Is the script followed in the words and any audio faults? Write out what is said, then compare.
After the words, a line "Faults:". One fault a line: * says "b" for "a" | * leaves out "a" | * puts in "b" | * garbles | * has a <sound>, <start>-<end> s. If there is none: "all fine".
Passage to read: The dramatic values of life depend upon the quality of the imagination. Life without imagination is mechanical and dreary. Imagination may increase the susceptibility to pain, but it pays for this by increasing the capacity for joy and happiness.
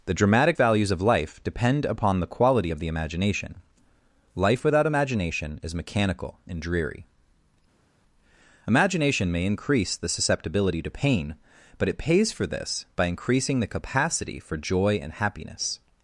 The dramatic values of life depend upon the quality of the imagination. Life without imagination is mechanical and dreary. Imagination may increase the susceptibility to pain, but it pays for this by increasing the capacity for joy and happiness.
Faults:
all fine